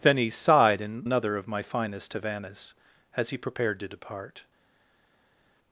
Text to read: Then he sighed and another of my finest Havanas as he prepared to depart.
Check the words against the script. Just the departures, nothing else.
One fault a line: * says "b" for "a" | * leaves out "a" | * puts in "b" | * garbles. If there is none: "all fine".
all fine